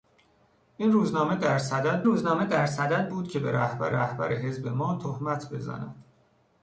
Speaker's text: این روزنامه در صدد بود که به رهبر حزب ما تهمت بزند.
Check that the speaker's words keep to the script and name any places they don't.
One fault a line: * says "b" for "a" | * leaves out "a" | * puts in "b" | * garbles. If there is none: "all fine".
* puts in "روزنامه در صدد"
* puts in "رهبر"